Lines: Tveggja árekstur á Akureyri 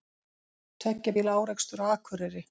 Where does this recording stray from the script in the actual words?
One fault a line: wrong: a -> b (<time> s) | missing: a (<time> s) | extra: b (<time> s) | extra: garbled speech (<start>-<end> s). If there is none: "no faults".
extra: bíla (1.2 s)